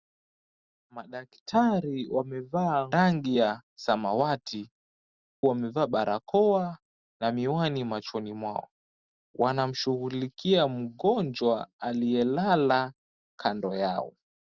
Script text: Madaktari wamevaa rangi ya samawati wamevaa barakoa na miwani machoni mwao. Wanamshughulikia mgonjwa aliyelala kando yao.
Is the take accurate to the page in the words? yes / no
yes